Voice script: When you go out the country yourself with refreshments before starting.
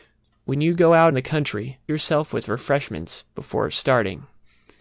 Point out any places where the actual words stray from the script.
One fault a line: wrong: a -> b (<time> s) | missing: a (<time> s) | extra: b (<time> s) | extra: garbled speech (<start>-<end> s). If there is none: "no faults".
no faults